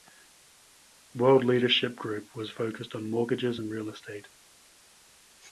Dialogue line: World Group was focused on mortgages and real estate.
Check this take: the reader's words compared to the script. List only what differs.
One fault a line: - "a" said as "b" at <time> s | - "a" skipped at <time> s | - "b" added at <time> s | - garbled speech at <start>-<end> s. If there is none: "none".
- "Leadership" added at 1.4 s